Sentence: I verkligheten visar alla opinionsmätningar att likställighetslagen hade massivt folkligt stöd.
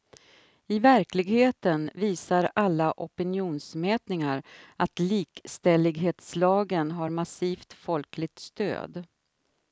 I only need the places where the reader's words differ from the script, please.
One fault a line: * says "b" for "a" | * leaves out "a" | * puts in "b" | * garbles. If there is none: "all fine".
* says "har" for "hade"